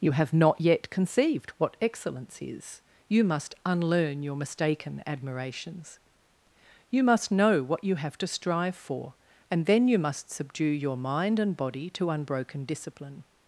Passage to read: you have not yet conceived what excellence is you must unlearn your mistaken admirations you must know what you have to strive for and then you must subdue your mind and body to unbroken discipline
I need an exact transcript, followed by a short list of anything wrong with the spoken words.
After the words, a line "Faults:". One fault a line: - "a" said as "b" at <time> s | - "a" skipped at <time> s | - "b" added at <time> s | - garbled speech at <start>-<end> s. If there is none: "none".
you have not yet conceived what excellence is you must unlearn your mistaken admirations you must know what you have to strive for and then you must subdue your mind and body to unbroken discipline
Faults:
none